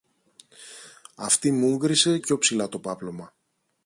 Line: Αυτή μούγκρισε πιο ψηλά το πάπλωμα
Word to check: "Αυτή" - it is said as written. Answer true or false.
true